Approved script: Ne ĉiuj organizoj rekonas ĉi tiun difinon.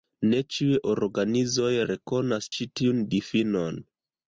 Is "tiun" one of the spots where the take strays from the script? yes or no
no